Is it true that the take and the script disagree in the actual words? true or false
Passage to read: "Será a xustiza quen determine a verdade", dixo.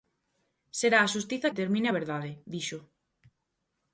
true